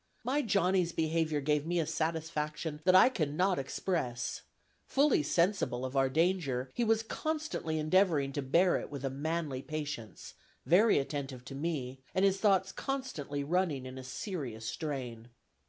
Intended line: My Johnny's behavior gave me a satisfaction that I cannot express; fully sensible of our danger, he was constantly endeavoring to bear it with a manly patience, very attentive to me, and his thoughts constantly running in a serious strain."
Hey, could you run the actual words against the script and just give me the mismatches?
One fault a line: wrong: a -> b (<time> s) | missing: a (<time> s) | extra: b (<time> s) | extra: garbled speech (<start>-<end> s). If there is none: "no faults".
no faults